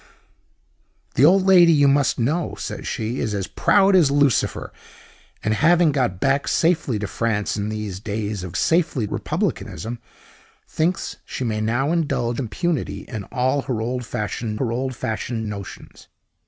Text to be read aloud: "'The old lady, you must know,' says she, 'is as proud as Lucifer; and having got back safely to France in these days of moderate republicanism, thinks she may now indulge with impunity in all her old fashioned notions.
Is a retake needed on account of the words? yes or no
yes